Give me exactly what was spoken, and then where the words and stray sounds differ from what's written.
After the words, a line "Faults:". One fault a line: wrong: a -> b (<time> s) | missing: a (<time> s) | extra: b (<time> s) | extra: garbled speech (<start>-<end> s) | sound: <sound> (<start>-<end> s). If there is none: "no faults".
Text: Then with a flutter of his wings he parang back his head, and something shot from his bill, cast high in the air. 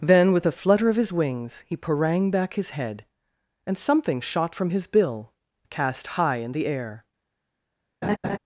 Then with a flutter of his wings he parang back his head, and something shot from his bill, cast high in the air.
Faults:
sound: laugh (8.0-8.4 s)